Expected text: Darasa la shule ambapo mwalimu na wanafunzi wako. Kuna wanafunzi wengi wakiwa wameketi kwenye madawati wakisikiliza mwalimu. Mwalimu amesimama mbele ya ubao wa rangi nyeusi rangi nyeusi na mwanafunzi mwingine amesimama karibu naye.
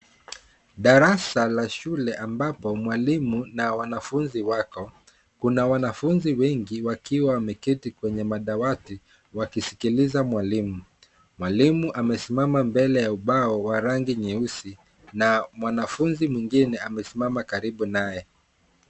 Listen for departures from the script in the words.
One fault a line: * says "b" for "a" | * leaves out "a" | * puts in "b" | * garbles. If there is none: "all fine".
* leaves out "rangi nyeusi"